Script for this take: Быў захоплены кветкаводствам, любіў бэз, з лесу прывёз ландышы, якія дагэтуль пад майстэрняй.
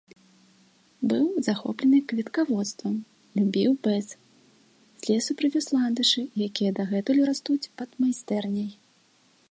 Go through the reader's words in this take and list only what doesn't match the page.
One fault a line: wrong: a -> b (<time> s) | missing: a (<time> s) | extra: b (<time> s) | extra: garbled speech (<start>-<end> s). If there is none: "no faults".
extra: растуць (7.3 s)